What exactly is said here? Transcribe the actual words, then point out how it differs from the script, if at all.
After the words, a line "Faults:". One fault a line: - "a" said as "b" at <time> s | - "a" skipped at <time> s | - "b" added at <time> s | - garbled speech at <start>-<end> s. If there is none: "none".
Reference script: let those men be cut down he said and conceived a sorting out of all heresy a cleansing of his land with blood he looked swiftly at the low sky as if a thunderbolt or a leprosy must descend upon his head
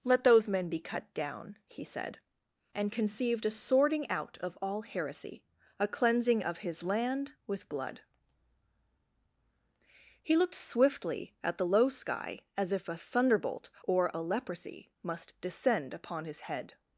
let those men be cut down he said and conceived a sorting out of all heresy a cleansing of his land with blood he looked swiftly at the low sky as if a thunderbolt or a leprosy must descend upon his head
Faults:
none